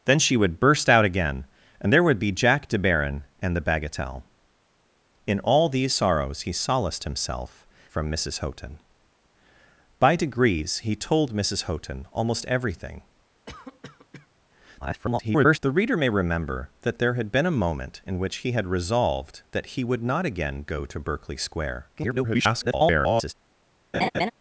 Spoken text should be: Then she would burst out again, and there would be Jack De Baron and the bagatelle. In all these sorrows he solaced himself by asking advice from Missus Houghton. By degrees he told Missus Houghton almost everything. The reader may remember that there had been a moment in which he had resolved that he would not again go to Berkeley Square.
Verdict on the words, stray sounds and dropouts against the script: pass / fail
fail